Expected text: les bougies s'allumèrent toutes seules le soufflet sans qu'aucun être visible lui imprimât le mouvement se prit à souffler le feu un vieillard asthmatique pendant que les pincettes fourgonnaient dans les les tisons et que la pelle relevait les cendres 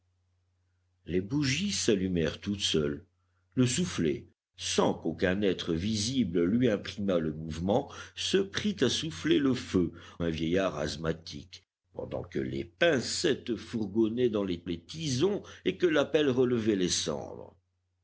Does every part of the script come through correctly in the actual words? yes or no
yes